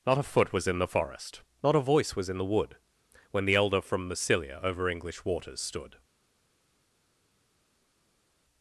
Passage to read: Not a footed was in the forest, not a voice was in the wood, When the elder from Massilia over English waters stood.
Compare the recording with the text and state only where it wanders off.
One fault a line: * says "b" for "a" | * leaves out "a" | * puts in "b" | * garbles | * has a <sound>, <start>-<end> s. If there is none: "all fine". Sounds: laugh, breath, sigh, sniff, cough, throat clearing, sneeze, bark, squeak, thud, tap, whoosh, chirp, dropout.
* says "foot" for "footed"